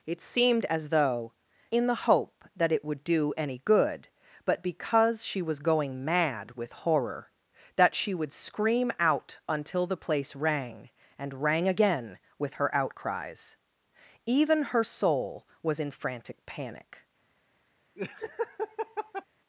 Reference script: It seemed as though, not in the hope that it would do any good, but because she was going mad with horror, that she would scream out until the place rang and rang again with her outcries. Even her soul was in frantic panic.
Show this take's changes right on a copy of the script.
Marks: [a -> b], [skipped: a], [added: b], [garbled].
It seemed as though, [skipped: not] in the hope that it would do any good, but because she was going mad with horror, that she would scream out until the place rang and rang again with her outcries. Even her soul was in frantic panic.